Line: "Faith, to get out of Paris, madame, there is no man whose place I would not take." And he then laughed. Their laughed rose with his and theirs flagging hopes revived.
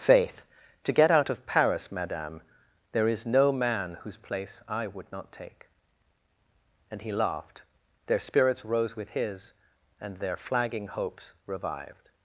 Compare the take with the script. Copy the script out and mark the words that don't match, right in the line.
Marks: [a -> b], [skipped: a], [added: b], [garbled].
"Faith, to get out of Paris, madame, there is no man whose place I would not take." And he [skipped: then] laughed. Their [laughed -> spirits] rose with his and [theirs -> their] flagging hopes revived.